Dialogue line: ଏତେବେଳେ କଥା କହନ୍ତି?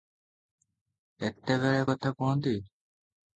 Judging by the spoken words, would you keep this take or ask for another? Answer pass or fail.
pass